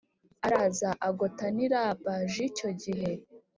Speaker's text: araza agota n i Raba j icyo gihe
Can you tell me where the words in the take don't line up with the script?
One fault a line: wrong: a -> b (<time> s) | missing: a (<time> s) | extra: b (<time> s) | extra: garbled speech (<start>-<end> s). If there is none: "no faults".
no faults